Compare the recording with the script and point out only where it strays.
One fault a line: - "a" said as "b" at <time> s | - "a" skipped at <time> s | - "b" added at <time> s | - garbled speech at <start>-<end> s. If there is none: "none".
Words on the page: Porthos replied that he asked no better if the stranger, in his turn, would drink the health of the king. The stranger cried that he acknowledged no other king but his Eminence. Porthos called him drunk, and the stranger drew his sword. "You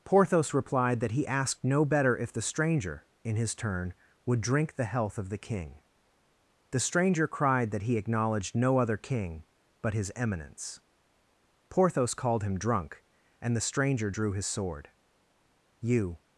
none